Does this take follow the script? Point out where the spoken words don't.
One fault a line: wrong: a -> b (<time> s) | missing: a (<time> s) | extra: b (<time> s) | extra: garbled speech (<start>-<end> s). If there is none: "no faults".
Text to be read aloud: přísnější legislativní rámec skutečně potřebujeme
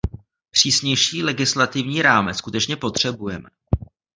no faults